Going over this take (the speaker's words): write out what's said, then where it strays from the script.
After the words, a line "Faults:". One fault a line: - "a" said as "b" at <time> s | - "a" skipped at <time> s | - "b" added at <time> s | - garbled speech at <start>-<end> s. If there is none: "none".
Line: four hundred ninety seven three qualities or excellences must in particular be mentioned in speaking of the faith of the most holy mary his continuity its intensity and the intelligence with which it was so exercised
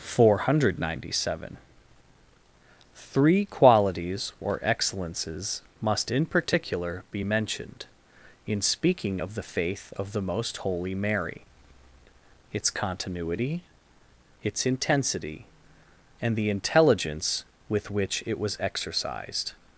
four hundred ninety seven three qualities or excellences must in particular be mentioned in speaking of the faith of the most holy mary its continuity its intensity and the intelligence with which it was exercised
Faults:
- "his" said as "its" at 12.5 s
- "so" skipped at 18.6 s